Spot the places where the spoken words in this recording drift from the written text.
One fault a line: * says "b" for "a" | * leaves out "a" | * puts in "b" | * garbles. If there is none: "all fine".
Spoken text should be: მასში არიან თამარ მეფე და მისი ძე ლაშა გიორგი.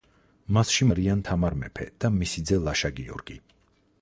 all fine